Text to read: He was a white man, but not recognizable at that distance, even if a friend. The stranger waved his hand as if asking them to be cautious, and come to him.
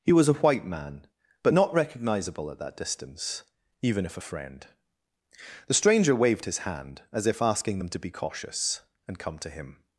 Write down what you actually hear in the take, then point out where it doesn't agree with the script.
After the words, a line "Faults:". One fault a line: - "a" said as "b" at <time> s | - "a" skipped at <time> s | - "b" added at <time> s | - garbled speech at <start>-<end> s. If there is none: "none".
He was a white man, but not recognizable at that distance, even if a friend. The stranger waved his hand as if asking them to be cautious, and come to him.
Faults:
none